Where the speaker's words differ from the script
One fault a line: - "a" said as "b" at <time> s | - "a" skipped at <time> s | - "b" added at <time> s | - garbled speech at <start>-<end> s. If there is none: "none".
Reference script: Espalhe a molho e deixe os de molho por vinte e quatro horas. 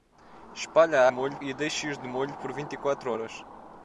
none